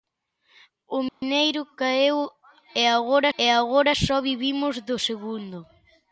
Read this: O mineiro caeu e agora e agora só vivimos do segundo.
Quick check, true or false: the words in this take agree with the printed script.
true